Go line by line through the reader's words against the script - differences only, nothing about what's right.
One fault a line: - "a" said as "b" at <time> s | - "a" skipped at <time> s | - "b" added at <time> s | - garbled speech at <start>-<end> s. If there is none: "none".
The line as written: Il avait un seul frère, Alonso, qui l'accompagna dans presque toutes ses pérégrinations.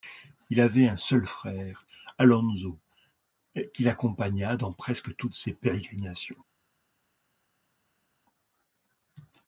none